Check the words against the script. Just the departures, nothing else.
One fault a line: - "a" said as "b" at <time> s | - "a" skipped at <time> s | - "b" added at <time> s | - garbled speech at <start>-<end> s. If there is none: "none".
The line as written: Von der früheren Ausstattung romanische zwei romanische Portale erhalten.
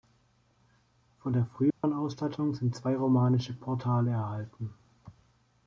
- "romanische" said as "sind" at 2.5 s